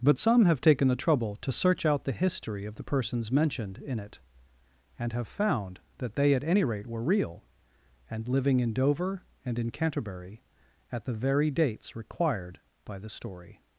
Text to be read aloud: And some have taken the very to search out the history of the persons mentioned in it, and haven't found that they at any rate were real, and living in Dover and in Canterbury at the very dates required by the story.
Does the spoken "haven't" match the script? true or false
false